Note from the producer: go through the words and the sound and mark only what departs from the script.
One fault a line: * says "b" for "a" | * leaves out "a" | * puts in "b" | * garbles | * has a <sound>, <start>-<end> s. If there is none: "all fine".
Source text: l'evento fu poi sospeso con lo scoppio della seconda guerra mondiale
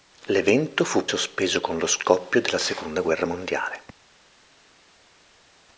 * leaves out "poi"